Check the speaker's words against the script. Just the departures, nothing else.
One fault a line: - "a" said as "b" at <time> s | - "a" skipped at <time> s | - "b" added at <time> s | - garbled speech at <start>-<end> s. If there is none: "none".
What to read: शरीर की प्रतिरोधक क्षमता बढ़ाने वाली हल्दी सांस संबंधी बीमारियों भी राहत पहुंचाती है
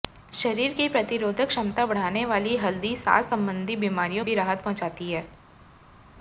none